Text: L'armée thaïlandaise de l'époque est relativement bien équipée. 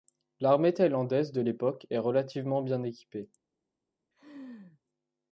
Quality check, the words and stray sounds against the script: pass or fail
fail